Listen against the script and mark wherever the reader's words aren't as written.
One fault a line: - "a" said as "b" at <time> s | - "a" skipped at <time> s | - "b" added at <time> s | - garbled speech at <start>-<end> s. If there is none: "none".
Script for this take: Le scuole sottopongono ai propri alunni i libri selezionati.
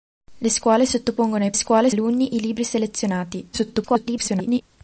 - "propri" said as "scuole" at 1.5 s
- garbled speech at 3.5-4.6 s